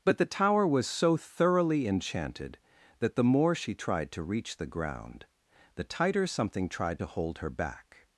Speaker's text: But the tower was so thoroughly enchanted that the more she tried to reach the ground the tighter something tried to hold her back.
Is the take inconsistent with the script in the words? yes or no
no